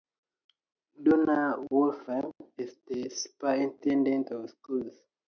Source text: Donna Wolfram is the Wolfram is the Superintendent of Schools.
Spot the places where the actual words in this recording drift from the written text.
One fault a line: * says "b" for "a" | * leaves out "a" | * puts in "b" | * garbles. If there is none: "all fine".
* leaves out "Wolfram is the"